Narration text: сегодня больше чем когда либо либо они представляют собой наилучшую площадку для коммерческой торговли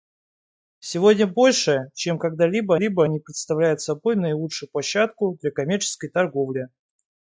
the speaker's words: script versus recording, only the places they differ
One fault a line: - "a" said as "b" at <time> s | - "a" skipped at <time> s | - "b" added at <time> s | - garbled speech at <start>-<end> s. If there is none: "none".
none